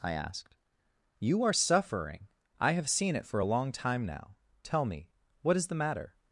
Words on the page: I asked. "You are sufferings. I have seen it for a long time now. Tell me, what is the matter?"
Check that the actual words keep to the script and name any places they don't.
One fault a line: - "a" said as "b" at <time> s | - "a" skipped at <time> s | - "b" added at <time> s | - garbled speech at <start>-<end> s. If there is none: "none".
- "sufferings" said as "suffering" at 1.5 s